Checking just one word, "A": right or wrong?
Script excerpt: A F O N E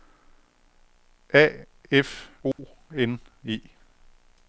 right